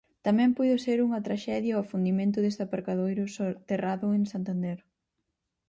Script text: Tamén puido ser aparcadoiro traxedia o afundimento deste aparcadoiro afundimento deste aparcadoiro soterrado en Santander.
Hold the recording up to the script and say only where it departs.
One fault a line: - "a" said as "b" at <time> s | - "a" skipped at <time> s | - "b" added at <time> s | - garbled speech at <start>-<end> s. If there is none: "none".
- "aparcadoiro" said as "unha" at 1.1 s
- "afundimento deste aparcadoiro" skipped at 3.2 s